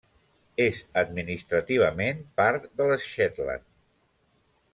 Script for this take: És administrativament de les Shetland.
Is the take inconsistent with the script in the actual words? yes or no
yes